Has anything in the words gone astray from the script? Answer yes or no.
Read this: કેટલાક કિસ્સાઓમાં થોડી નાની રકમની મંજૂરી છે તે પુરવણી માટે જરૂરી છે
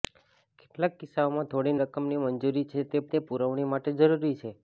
yes